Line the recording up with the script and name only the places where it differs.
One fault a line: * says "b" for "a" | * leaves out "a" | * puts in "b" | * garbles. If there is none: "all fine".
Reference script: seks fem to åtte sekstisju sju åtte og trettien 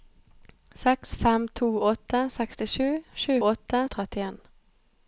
all fine